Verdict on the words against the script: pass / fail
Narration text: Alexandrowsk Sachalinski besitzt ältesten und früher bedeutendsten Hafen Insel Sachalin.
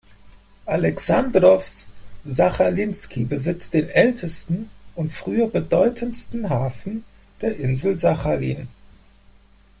fail